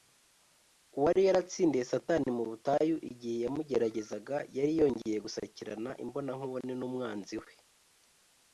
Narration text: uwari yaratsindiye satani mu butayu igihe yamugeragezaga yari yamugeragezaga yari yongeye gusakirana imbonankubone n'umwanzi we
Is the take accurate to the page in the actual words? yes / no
no